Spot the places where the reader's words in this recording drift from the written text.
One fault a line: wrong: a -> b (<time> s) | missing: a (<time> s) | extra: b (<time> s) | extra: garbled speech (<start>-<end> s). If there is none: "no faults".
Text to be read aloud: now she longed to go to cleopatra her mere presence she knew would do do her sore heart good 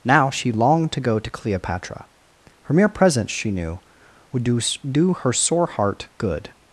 no faults